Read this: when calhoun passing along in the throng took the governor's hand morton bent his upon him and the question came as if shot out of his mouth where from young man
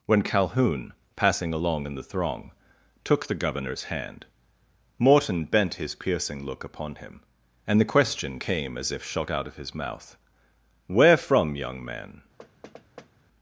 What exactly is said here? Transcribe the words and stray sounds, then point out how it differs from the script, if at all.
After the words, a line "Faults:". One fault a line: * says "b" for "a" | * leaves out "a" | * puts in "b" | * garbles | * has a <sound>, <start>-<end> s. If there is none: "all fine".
when calhoun passing along in the throng took the governor's hand morton bent his piercing look upon him and the question came as if shot out of his mouth where from young man
Faults:
* puts in "piercing look"
* has a thud, 12.4-13.1 s